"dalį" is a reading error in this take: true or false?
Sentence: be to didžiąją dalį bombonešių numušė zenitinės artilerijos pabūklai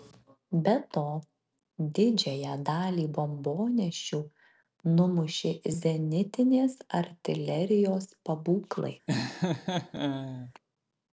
false